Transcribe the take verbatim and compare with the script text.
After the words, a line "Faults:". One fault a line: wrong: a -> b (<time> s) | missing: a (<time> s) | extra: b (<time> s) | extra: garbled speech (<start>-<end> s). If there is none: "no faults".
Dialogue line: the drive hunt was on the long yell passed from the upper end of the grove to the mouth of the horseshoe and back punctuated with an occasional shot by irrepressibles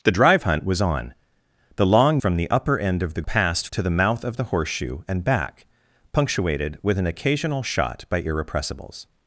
the drive hunt was on the long from the upper end of the passed to the mouth of the horseshoe and back punctuated with an occasional shot by irrepressibles
Faults:
missing: yell passed (2.2 s)
wrong: grove -> passed (3.2 s)